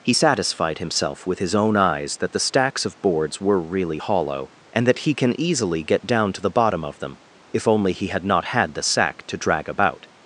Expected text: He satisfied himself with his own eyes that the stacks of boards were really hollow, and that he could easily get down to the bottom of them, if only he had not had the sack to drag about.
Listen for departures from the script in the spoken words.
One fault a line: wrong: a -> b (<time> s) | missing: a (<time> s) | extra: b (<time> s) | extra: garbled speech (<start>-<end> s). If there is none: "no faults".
wrong: could -> can (5.1 s)